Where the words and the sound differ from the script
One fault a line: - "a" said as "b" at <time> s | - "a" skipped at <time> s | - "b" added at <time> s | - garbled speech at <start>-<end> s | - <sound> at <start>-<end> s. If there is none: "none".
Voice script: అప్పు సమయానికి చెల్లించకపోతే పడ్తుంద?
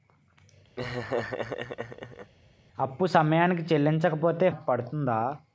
- laugh at 0.8-2.3 s